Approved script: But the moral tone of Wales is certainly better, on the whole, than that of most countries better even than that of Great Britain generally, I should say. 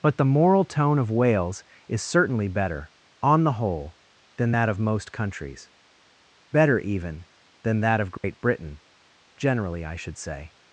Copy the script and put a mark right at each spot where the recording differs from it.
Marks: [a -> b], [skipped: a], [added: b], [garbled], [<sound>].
But the moral tone of Wales is certainly better, on the whole, than that of most countries better even than that of Great [dropout] Britain generally, I should say.